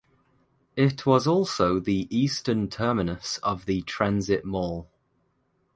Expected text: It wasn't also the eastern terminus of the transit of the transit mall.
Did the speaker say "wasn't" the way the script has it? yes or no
no